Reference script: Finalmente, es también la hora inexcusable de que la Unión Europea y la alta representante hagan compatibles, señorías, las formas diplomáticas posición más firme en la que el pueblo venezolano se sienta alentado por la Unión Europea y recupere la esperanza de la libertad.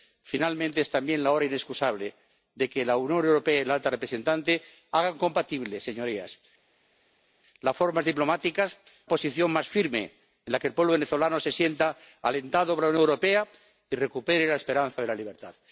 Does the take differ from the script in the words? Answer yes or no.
no